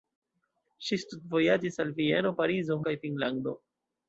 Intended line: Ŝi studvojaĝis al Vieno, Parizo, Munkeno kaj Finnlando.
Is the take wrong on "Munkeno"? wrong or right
wrong